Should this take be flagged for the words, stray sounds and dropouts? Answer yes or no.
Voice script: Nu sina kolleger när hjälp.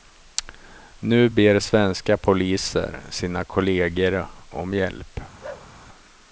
yes